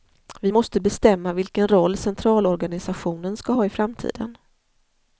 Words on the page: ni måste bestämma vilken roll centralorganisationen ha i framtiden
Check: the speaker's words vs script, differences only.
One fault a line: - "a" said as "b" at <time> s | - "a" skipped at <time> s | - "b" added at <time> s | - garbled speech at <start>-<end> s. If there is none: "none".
- "ni" said as "vi" at 0.4 s
- "ska" added at 3.4 s